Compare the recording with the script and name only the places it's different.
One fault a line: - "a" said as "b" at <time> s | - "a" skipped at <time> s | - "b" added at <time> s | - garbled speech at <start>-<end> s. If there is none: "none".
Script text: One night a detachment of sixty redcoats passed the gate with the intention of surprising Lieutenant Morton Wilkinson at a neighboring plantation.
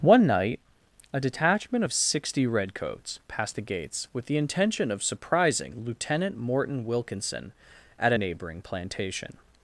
- "gate" said as "gates" at 3.6 s